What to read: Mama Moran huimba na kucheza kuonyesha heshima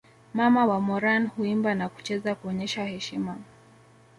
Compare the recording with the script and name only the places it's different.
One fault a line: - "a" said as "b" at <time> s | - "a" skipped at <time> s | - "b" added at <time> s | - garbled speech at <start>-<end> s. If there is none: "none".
- "wa" added at 0.6 s